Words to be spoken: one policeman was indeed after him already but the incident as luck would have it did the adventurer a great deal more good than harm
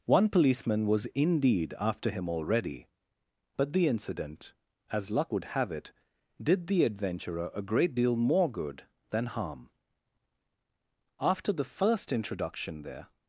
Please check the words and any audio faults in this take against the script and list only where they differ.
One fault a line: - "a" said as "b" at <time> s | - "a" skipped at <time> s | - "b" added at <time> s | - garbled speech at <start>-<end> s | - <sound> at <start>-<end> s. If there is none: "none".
- "after the first introduction there" added at 11.2 s